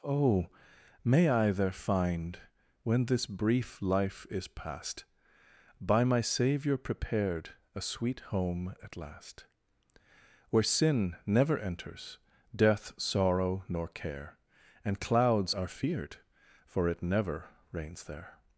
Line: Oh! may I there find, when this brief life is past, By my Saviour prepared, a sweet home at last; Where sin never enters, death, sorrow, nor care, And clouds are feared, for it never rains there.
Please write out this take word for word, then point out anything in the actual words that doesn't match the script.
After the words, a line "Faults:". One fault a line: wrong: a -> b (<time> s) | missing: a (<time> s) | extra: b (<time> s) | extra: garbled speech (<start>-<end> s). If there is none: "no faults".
Oh! may I there find, when this brief life is past, By my Saviour prepared, a sweet home at last; Where sin never enters, death, sorrow, nor care, And clouds are feared, for it never rains there.
Faults:
no faults